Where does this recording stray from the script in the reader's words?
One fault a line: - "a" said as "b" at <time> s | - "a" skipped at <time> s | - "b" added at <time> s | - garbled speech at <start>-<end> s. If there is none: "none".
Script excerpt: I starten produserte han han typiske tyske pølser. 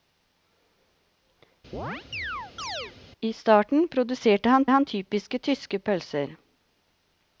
none